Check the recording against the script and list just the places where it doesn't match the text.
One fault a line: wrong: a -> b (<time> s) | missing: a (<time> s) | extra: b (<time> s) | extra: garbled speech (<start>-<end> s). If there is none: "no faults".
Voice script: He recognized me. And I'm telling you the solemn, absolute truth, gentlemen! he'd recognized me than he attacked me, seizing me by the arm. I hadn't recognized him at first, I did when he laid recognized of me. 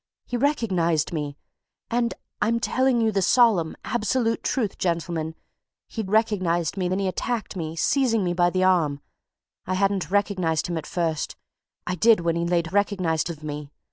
no faults